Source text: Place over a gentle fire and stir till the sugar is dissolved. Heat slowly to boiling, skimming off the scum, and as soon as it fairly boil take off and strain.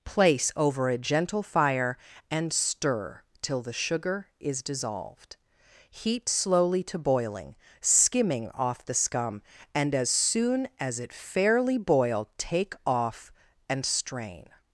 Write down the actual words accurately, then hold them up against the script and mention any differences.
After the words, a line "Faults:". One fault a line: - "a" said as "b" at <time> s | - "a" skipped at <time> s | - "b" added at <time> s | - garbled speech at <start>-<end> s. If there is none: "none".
Place over a gentle fire and stir till the sugar is dissolved. Heat slowly to boiling, skimming off the scum, and as soon as it fairly boil take off and strain.
Faults:
none